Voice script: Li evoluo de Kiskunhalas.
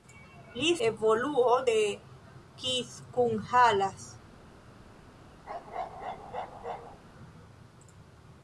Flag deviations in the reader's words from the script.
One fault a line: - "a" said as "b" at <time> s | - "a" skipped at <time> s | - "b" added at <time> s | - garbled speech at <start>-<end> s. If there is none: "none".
none